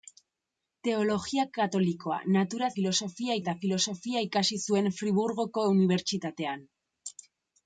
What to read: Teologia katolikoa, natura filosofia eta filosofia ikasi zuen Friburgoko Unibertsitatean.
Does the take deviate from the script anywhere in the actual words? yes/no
no